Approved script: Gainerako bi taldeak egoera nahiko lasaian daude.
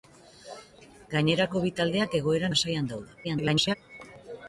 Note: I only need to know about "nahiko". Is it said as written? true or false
false